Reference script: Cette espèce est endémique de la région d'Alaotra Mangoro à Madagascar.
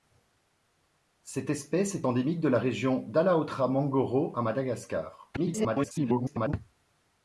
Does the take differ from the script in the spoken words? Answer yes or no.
yes